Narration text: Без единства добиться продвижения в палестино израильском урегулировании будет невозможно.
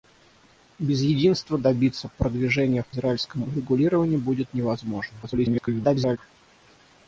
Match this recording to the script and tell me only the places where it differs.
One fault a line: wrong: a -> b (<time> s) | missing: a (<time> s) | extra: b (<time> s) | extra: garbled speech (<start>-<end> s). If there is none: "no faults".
missing: палестино (2.9 s)
extra: garbled speech (5.2-6.2 s)